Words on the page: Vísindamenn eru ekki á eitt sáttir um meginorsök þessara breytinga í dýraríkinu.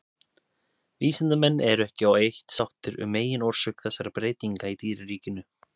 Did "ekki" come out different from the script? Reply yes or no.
no